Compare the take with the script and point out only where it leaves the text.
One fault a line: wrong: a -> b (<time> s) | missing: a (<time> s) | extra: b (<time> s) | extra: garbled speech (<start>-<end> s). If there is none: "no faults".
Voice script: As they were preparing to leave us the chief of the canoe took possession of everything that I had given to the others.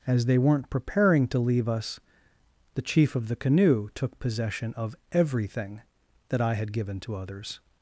wrong: were -> weren't (0.4 s)
missing: the (7.2 s)